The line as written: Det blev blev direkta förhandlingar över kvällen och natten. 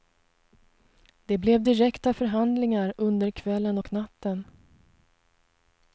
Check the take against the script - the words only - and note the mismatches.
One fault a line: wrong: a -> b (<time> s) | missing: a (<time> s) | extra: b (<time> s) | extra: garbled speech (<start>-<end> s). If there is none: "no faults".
missing: blev (1.6 s)
wrong: över -> under (3.0 s)